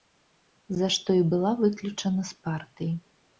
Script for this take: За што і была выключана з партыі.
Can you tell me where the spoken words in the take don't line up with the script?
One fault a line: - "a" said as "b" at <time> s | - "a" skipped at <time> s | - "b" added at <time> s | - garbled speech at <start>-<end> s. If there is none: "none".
none